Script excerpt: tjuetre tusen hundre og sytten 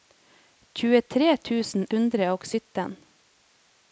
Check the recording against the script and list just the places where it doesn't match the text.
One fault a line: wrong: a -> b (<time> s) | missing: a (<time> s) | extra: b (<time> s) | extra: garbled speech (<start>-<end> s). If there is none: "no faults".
no faults